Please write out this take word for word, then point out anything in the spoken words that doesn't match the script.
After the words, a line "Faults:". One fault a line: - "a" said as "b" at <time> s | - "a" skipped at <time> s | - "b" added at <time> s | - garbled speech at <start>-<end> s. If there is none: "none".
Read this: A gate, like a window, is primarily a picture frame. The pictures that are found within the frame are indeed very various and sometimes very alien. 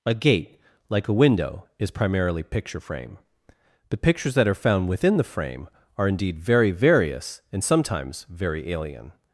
A gate, like a window, is primarily picture frame. The pictures that are found within the frame are indeed very various and sometimes very alien.
Faults:
- "a" skipped at 2.4 s